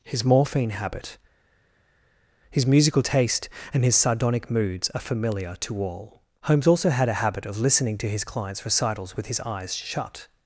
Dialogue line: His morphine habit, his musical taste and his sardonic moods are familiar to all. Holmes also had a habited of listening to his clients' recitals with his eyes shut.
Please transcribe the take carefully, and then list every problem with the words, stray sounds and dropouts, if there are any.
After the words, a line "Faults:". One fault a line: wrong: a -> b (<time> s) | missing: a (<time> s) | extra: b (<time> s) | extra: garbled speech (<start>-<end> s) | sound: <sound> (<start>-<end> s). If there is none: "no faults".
His morphine habit, his musical taste and his sardonic moods are familiar to all. Holmes also had a habit of listening to his clients' recitals with his eyes shut.
Faults:
wrong: habited -> habit (7.2 s)